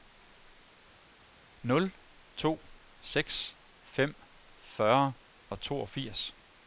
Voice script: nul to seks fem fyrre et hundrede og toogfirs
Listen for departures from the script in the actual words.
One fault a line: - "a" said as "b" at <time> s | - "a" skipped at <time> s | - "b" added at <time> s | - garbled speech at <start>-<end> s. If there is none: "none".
- "et hundrede" skipped at 5.1 s